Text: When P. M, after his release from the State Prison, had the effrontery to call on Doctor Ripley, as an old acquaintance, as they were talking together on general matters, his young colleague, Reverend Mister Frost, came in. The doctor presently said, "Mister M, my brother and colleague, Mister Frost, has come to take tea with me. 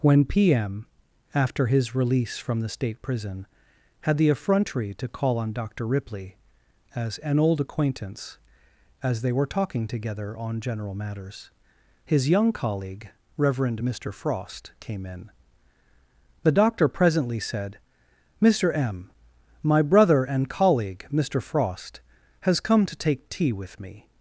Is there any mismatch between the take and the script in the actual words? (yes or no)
no